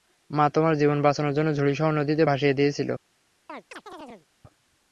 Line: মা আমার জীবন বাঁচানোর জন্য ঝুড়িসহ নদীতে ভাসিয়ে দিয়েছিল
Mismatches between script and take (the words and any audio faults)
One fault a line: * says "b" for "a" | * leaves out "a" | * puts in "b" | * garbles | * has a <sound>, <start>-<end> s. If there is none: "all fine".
* says "তোমার" for "আমার"
* has a chirp, 3.5-4.3 s